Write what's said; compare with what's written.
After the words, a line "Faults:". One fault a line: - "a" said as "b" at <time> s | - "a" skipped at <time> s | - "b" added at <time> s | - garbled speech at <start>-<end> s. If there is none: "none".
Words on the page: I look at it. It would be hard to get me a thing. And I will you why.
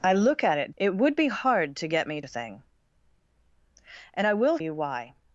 I look at it. It would be hard to get me a thing. And I will you why.
Faults:
none